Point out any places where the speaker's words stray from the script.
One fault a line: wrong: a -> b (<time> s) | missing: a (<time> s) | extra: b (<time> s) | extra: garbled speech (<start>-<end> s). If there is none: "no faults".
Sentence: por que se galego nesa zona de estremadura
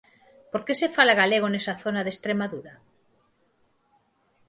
extra: fala (0.9 s)